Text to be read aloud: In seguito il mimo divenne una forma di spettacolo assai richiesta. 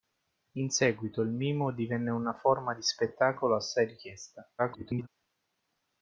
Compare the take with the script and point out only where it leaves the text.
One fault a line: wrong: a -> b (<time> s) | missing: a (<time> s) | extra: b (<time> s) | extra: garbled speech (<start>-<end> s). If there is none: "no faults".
extra: garbled speech (4.6-5.1 s)